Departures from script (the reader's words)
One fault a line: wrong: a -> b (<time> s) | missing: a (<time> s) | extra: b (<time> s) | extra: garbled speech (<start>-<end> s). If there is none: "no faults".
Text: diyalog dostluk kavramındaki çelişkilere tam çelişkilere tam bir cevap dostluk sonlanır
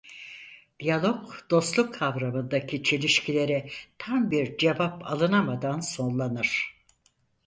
missing: çelişkilere tam (4.3 s)
wrong: dostluk -> alınamadan (5.0 s)